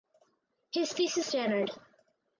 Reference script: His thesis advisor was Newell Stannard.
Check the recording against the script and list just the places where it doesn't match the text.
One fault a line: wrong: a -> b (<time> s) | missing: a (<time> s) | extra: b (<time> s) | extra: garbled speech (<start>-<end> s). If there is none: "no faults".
missing: advisor was Newell (1.2 s)